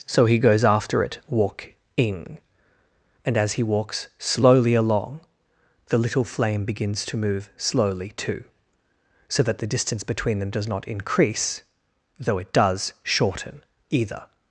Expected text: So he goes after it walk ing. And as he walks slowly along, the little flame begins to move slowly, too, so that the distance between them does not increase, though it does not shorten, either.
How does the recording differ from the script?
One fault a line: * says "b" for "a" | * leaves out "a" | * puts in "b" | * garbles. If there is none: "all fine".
* leaves out "not"